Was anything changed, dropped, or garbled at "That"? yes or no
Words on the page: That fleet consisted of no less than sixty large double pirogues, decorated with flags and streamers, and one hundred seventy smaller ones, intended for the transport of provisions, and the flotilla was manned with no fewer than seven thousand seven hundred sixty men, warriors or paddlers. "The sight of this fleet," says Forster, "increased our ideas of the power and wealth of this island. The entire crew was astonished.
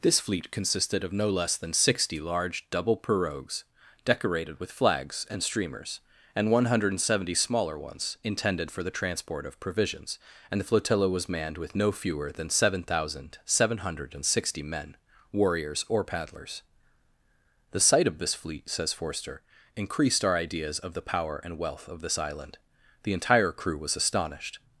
yes